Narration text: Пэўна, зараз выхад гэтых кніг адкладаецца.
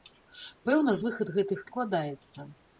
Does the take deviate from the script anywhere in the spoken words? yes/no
yes